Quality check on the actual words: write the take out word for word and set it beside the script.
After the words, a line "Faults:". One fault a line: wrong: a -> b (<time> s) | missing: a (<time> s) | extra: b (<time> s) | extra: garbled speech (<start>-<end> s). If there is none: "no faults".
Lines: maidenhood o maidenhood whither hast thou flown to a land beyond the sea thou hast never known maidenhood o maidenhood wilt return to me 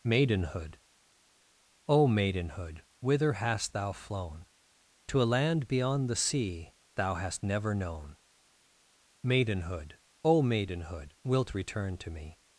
maidenhood o maidenhood whither hast thou flown to a land beyond the sea thou hast never known maidenhood o maidenhood wilt return to me
Faults:
no faults